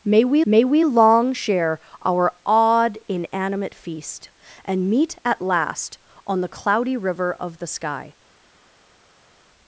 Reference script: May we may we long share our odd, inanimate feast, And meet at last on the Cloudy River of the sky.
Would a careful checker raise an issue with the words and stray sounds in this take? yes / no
no